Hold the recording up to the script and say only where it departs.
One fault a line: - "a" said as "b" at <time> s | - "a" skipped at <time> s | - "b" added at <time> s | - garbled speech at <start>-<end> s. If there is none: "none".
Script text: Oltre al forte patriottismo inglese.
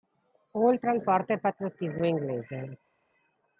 none